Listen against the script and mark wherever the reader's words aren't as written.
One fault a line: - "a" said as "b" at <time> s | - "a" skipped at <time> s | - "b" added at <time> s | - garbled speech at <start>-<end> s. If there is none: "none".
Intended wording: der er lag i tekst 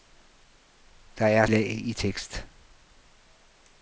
none